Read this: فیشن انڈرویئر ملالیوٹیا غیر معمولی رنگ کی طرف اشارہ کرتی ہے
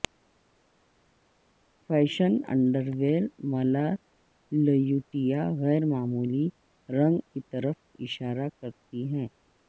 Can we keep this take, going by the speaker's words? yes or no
yes